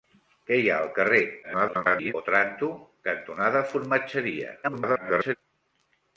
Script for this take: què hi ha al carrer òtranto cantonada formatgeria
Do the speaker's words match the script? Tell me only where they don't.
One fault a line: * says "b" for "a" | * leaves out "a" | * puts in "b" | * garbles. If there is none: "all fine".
* garbles
* garbles